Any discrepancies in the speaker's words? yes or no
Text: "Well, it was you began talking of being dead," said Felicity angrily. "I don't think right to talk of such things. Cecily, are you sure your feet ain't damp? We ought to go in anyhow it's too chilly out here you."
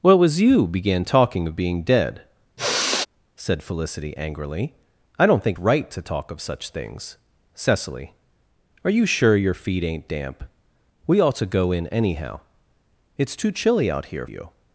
no